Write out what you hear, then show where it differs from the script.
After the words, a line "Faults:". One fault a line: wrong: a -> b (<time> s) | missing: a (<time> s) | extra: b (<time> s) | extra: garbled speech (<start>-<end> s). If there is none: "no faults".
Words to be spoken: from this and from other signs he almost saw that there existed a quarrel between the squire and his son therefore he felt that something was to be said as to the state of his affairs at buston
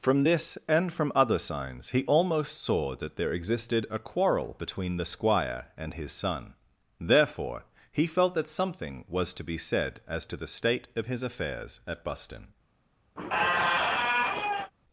from this and from other signs he almost saw that there existed a quarrel between the squire and his son therefore he felt that something was to be said as to the state of his affairs at buston
Faults:
no faults